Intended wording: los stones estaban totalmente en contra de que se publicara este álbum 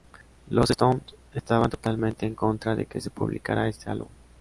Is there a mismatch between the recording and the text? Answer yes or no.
no